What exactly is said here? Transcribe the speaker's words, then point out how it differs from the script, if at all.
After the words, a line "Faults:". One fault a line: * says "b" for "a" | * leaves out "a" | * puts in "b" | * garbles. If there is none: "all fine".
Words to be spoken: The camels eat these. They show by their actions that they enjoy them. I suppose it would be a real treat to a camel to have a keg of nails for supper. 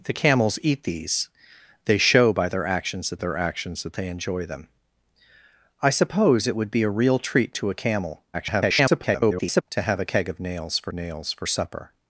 The camels eat these. They show by their actions that their actions that they enjoy them. I suppose it would be a real treat to a camel [garbled] to have a keg of nails for nails for supper.
Faults:
* puts in "their actions that"
* garbles
* puts in "nails for"